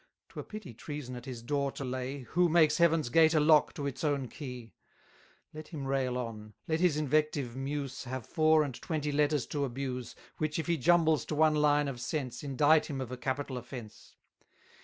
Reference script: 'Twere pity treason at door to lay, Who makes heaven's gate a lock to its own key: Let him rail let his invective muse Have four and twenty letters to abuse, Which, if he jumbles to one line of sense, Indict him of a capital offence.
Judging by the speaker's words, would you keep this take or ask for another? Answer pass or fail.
fail